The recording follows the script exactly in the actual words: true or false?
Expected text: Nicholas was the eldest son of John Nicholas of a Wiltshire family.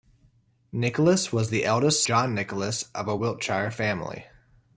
false